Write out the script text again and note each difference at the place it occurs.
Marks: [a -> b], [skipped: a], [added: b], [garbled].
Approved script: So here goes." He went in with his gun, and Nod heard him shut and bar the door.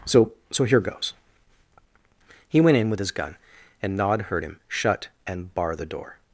So [added: so] here goes." He went in with his gun, and Nod heard him shut and bar the door.